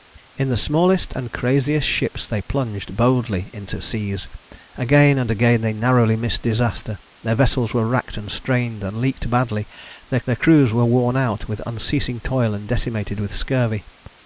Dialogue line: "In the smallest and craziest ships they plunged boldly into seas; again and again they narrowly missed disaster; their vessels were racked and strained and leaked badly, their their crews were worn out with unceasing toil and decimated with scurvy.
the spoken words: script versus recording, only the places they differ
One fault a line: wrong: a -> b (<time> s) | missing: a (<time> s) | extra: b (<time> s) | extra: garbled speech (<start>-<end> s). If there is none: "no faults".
no faults